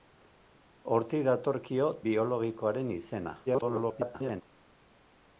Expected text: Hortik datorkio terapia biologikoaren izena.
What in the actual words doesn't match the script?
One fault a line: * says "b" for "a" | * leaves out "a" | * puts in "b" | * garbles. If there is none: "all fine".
* leaves out "terapia"
* garbles